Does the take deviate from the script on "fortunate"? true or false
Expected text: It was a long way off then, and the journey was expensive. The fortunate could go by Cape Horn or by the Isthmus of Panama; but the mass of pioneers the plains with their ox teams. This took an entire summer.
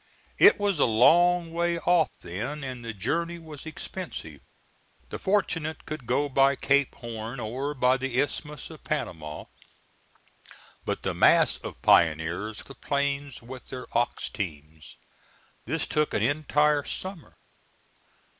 false